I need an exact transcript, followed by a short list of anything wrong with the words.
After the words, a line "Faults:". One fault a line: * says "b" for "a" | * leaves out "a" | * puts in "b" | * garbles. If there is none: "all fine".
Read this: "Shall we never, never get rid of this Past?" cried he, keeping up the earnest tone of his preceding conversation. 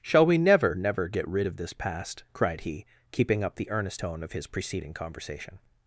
"Shall we never, never get rid of this Past?" cried he, keeping up the earnest tone of his preceding conversation.
Faults:
all fine